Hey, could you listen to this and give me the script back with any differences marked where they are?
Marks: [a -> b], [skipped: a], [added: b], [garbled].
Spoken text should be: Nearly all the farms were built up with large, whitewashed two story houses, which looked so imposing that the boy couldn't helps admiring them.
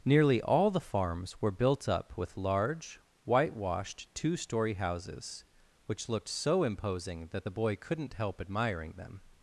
Nearly all the farms were built up with large, whitewashed two story houses, which looked so imposing that the boy couldn't [helps -> help] admiring them.